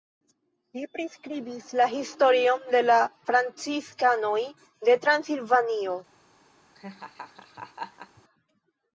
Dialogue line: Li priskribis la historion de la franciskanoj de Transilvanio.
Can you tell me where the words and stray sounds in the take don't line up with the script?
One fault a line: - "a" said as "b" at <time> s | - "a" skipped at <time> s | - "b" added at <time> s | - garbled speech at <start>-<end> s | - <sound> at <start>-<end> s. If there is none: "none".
- laugh at 6.7-8.2 s